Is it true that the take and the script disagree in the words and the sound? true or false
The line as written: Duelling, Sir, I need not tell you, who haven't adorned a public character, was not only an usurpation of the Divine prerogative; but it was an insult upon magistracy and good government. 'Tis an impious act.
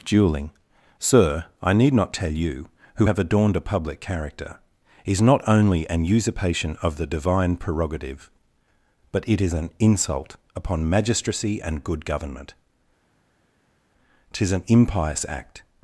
true